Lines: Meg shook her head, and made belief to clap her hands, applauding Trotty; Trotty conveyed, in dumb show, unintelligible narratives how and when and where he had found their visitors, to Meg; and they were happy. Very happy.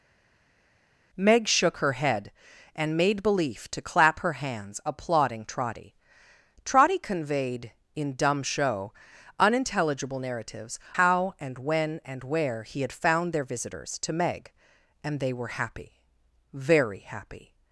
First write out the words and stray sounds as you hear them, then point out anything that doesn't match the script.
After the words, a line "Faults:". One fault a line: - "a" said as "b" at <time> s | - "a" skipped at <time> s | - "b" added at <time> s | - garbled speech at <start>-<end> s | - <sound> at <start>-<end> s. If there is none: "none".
Meg shook her head, and made belief to clap her hands, applauding Trotty; Trotty conveyed, in dumb show, unintelligible narratives how and when and where he had found their visitors, to Meg; and they were happy. Very happy.
Faults:
none